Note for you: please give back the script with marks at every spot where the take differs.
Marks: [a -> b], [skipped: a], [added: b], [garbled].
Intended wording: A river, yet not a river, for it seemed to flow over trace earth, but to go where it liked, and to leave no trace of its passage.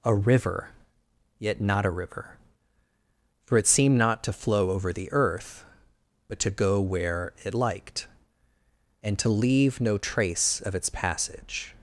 A river, yet not a river, for it seemed [added: not] to flow over [trace -> the] earth, but to go where it liked, and to leave no trace of its passage.